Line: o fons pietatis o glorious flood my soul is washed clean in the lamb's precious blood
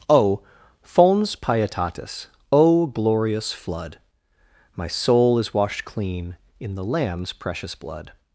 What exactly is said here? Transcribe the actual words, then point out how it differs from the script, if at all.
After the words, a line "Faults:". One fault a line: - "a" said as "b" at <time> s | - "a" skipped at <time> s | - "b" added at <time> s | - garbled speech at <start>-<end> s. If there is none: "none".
o fons pietatis o glorious flood my soul is washed clean in the lamb's precious blood
Faults:
none